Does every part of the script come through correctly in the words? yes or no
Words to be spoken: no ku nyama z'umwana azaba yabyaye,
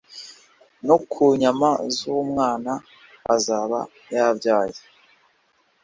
yes